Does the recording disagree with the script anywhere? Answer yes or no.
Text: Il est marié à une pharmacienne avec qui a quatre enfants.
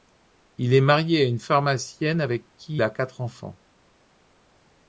no